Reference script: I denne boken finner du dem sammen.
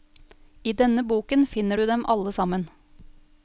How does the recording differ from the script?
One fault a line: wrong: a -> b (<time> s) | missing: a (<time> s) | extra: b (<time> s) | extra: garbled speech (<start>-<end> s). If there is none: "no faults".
extra: alle (2.1 s)